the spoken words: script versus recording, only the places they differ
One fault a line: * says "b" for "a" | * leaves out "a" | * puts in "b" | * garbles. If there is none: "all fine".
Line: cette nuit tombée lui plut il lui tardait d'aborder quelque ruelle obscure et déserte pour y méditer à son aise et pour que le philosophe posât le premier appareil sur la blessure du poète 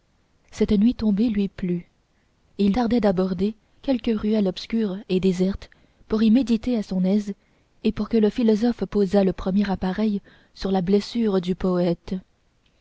* leaves out "lui"